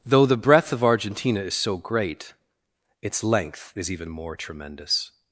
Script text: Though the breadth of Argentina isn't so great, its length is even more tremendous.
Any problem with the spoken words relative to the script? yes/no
yes